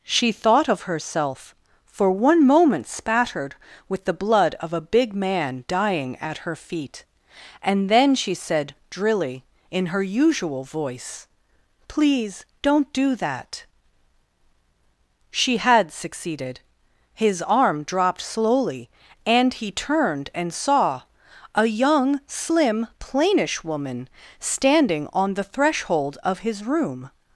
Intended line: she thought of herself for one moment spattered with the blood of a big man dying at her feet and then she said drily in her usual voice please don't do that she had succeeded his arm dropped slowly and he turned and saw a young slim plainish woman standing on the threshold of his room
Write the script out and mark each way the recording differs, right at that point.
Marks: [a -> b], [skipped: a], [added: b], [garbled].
she thought of herself for one moment spattered with the blood of a big man dying at her feet and then she said drily in her usual voice please don't do that she had succeeded his arm dropped slowly and he turned and saw a young slim plainish woman standing on the threshold of his room